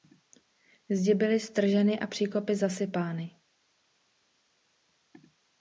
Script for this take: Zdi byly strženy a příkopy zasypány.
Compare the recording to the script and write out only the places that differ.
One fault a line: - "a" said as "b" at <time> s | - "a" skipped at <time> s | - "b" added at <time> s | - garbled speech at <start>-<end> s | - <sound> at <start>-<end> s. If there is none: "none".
none